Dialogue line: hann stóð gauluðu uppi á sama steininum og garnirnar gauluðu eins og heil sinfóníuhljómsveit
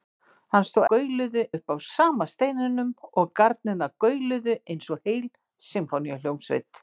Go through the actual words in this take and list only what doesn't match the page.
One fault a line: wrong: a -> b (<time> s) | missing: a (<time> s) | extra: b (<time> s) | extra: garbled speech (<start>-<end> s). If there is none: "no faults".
no faults